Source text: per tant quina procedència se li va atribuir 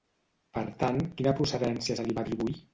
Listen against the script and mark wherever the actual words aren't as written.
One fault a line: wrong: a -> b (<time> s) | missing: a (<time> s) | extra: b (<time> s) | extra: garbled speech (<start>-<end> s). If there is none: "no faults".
no faults